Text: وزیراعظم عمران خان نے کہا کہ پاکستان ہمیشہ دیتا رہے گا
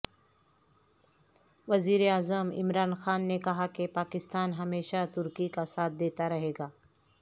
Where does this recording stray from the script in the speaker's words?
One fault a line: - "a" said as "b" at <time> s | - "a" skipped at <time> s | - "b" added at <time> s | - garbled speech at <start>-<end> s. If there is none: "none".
- "ترکی کا ساتھ" added at 5.1 s